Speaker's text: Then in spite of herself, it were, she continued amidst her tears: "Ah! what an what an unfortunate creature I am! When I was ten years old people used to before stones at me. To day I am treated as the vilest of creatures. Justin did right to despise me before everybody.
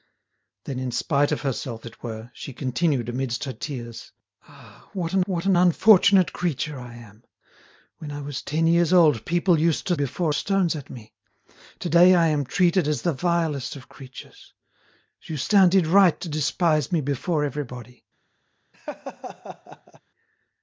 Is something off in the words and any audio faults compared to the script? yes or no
yes